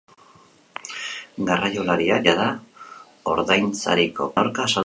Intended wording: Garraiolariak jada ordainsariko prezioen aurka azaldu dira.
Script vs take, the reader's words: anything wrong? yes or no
yes